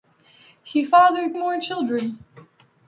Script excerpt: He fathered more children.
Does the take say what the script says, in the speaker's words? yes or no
yes